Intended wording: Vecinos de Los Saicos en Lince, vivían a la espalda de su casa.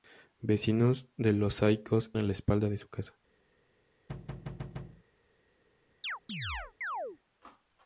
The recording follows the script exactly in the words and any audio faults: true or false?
false